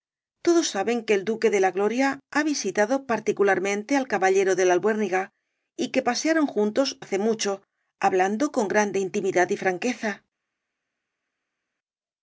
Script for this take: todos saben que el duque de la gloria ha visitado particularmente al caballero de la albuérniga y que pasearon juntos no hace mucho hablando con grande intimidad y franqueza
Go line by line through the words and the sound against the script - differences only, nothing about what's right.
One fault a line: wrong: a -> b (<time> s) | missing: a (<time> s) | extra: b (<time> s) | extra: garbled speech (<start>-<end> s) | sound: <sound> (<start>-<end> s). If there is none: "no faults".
missing: no (7.0 s)